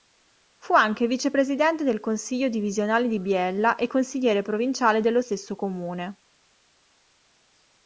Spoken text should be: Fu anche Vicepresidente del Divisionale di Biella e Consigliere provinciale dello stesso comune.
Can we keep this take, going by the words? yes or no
no